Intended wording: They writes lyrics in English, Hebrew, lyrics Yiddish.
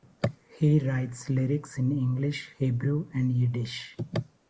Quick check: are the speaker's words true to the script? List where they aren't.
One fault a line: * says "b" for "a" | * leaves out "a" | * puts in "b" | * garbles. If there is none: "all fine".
* says "He" for "They"
* says "and" for "lyrics"